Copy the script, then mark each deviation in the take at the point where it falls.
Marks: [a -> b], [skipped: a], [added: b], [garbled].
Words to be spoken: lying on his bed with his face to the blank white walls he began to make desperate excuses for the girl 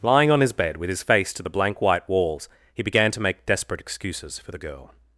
lying on his bed with his face to the blank white walls he began to make desperate excuses for the girl